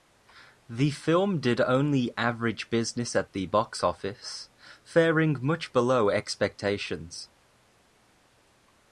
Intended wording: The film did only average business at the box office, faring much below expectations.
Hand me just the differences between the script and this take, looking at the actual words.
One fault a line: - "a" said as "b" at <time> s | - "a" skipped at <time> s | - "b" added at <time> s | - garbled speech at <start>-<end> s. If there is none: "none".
none